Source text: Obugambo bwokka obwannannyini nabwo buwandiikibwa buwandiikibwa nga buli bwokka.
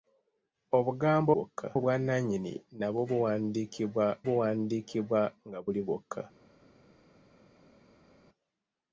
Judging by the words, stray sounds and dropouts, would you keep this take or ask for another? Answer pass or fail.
pass